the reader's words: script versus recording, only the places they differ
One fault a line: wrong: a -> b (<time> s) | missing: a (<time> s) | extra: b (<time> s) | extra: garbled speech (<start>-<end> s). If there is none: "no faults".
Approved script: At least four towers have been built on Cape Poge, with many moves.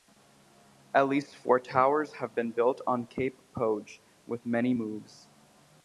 no faults